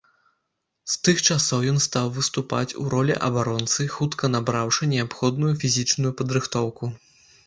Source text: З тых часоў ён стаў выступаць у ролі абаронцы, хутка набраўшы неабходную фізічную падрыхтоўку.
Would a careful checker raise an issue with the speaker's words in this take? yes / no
no